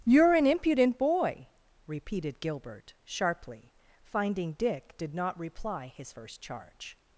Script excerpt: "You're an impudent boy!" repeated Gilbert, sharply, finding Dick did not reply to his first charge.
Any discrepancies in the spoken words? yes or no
yes